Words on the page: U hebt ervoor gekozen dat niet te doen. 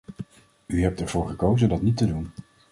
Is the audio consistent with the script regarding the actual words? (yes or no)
yes